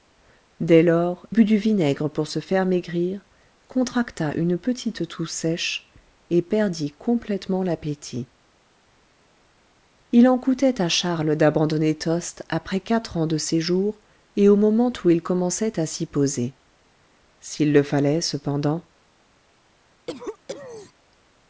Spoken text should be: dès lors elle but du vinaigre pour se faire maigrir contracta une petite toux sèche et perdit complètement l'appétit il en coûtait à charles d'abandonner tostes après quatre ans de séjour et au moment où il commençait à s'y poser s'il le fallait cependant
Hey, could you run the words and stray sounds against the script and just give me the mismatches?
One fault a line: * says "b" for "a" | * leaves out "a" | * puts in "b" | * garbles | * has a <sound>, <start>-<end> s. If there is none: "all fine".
* leaves out "elle"
* has a cough, 20.1-20.9 s